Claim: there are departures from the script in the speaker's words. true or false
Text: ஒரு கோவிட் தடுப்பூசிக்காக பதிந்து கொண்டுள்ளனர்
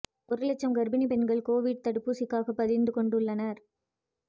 true